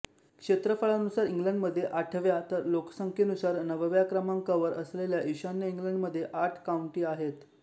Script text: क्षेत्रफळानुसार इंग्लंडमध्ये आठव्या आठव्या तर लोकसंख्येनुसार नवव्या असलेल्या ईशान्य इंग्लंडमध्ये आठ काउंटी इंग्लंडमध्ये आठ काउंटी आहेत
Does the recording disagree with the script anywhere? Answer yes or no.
yes